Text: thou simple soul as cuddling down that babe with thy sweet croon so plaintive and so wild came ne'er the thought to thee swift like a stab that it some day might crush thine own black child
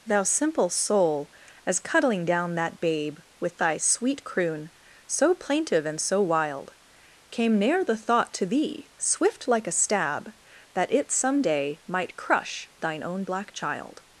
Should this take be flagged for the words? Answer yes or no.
no